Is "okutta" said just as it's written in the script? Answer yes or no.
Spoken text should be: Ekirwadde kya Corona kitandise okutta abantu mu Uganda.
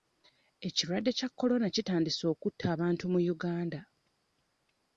yes